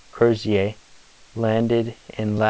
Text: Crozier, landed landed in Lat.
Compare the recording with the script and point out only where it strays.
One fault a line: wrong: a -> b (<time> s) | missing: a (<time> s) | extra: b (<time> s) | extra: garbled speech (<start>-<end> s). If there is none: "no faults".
missing: landed (2.0 s)